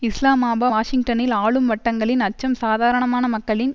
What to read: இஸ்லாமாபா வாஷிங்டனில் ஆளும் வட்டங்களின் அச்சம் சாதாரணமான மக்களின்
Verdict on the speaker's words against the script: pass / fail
pass